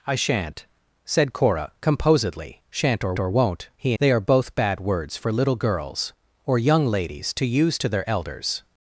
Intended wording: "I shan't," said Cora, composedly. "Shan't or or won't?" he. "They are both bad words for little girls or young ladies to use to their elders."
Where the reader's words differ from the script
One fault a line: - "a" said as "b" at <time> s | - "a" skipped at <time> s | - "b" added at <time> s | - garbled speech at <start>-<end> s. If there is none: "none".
none